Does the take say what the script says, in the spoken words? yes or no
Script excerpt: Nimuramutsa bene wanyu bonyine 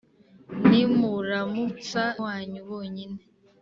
no